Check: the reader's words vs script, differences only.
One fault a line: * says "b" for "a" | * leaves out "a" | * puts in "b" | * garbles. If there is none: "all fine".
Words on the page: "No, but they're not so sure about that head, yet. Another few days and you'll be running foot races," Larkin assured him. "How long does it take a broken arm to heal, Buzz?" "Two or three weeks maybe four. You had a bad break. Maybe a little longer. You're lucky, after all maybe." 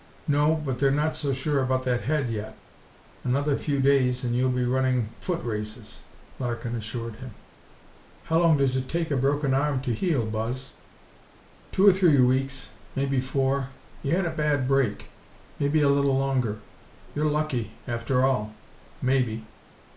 all fine